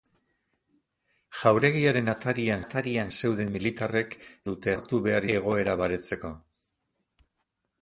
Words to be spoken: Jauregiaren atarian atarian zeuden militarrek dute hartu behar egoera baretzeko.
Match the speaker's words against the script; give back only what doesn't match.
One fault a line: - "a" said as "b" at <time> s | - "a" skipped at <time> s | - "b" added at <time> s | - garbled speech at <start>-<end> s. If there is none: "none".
none